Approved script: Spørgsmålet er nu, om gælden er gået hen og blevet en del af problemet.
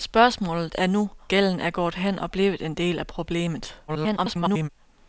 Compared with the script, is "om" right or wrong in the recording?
wrong